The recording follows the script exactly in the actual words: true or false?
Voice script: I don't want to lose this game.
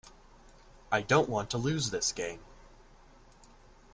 true